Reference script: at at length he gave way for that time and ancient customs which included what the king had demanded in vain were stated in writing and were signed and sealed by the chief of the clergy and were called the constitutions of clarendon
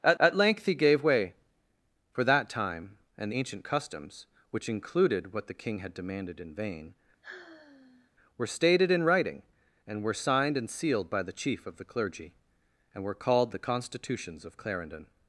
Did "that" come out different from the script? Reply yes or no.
no